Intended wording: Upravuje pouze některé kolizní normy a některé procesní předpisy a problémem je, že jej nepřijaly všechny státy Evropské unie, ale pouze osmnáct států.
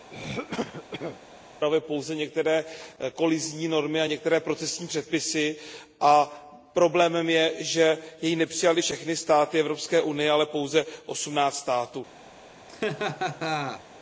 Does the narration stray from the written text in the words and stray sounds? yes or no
yes